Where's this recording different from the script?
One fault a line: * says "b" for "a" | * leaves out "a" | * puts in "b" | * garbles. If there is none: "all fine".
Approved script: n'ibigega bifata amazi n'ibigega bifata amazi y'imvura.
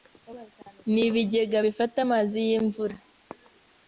* leaves out "n'ibigega bifata amazi"